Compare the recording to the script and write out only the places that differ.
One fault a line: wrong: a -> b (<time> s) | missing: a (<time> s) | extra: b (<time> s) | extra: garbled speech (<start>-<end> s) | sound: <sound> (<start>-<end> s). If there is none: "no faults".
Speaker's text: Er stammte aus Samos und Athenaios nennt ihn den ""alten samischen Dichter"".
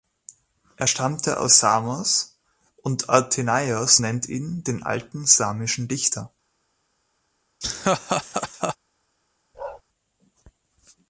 sound: laugh (7.6-8.8 s)
sound: bark (9.5-9.8 s)